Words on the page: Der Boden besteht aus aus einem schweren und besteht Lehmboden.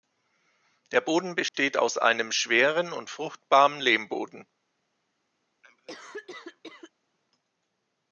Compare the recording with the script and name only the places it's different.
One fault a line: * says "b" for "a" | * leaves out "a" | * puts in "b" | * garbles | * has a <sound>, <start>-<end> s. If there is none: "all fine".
* has a dropout, 1.5-1.5 s
* leaves out "aus"
* says "fruchtbaren" for "besteht"
* has a cough, 5.6-6.9 s